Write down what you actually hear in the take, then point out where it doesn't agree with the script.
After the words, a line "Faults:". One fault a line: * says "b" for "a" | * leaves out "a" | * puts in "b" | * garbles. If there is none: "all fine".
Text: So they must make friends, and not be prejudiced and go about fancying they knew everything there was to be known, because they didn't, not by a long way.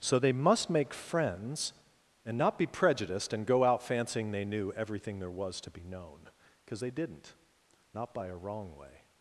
So they must make friends, and not be prejudiced and go out fancying they knew everything there was to be known, because they didn't, not by a wrong way.
Faults:
* says "out" for "about"
* says "wrong" for "long"